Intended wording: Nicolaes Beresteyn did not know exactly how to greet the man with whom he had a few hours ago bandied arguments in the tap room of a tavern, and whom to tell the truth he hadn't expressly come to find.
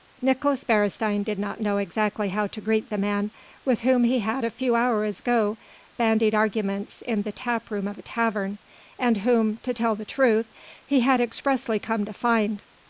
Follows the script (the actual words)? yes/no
no